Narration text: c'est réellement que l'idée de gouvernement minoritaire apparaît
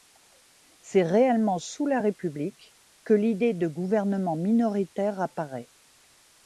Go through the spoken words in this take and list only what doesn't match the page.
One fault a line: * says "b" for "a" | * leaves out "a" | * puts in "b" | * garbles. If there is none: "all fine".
* puts in "sous la république"